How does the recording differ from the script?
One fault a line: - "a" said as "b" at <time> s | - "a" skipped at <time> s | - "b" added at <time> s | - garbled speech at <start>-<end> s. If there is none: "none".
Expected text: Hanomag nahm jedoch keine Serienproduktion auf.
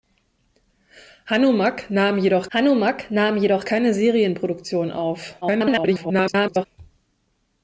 - "hanomag nahm jedoch" added at 2.5 s
- garbled speech at 5.4-6.7 s